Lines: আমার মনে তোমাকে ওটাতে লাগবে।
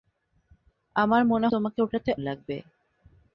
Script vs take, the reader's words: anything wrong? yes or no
no